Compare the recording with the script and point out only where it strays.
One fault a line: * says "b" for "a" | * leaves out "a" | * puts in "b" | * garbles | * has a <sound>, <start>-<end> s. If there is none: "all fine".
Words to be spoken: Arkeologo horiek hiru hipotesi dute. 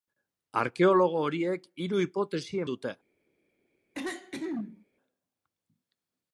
* has a throat clearing, 3.9-4.9 s